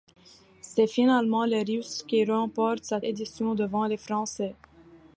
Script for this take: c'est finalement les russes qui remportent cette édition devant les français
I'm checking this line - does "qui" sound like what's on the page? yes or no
yes